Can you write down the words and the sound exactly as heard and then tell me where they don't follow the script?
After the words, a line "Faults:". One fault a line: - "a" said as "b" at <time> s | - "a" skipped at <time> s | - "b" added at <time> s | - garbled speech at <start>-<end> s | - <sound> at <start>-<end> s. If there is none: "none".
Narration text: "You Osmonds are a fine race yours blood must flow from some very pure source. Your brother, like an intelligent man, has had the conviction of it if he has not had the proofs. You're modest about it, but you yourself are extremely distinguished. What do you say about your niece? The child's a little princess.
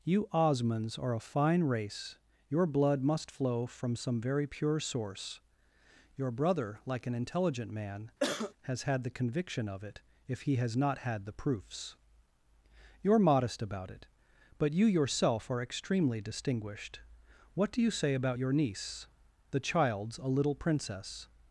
"You Osmonds are a fine race your blood must flow from some very pure source. Your brother, like an intelligent man, has had the conviction of it if he has not had the proofs. You're modest about it, but you yourself are extremely distinguished. What do you say about your niece? The child's a little princess.
Faults:
- "yours" said as "your" at 2.5 s
- cough at 8.2-8.5 s